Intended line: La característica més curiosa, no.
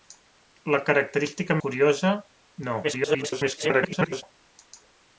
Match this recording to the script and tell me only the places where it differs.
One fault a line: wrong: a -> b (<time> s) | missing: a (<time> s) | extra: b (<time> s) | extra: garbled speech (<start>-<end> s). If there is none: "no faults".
missing: més (1.6 s)
extra: garbled speech (2.8-4.2 s)